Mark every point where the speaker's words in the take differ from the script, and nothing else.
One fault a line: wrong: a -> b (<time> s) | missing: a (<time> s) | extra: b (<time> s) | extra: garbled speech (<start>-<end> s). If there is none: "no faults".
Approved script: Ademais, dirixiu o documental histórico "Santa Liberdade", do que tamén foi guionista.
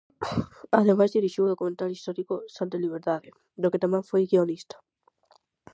no faults